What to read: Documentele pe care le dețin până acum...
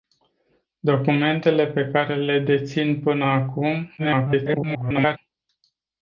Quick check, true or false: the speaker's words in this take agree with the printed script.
false